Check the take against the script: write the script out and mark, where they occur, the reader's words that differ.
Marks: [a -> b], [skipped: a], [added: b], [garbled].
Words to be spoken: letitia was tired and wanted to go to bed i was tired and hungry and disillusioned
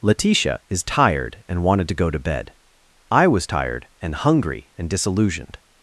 letitia [was -> is] tired and wanted to go to bed i was tired and hungry and disillusioned